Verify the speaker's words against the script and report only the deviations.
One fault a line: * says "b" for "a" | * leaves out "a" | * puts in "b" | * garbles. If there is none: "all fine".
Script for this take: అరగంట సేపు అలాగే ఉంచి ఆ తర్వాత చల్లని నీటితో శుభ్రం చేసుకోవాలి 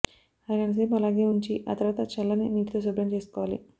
all fine